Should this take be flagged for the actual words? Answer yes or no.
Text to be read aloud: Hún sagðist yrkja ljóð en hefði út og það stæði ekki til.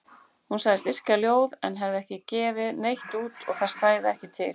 yes